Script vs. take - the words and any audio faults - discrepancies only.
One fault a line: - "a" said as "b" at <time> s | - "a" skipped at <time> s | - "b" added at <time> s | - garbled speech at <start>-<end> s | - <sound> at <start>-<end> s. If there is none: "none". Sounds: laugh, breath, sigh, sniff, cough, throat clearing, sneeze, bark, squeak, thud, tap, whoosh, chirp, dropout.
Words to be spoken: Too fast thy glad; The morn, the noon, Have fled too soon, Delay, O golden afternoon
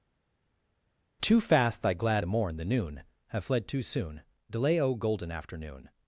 none